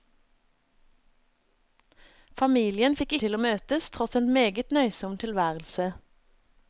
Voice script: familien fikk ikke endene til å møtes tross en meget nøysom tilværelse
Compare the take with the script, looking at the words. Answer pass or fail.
fail